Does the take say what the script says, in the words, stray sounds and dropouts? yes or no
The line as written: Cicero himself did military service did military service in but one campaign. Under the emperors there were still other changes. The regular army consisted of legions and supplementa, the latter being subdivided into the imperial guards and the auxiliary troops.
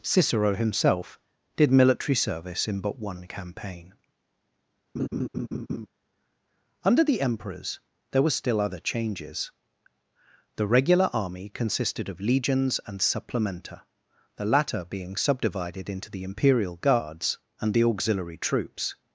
no